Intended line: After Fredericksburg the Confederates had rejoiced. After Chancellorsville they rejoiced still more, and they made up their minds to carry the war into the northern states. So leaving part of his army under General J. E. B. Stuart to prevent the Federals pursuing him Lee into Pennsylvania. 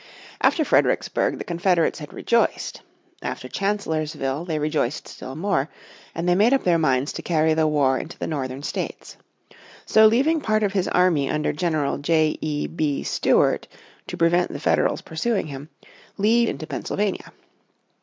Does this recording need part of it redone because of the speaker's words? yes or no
no